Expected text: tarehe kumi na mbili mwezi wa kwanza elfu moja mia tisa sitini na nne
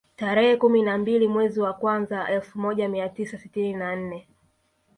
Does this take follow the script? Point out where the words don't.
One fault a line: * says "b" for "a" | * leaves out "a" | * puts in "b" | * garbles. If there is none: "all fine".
all fine